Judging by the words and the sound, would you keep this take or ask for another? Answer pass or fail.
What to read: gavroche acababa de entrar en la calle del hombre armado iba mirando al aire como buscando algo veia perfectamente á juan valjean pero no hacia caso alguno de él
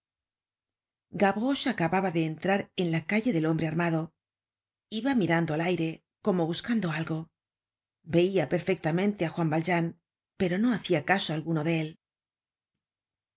pass